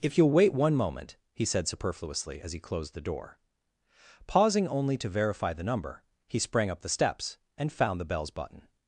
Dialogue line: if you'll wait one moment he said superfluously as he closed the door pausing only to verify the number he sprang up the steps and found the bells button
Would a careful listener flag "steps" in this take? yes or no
no